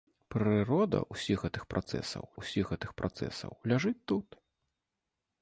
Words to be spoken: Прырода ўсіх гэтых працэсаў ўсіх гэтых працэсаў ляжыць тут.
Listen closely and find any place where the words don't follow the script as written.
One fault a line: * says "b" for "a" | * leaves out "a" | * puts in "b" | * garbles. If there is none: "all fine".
all fine